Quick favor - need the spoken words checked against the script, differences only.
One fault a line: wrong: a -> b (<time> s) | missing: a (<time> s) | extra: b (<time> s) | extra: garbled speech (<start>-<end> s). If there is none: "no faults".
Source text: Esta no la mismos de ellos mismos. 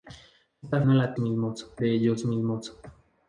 no faults